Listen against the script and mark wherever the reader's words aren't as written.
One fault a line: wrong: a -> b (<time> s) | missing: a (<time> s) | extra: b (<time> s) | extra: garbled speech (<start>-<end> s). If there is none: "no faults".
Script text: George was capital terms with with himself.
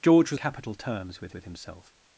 no faults